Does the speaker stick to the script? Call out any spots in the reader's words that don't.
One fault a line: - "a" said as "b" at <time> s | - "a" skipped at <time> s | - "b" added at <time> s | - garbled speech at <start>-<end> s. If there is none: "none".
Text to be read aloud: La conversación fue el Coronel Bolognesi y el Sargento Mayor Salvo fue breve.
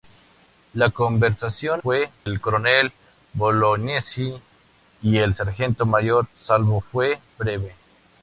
none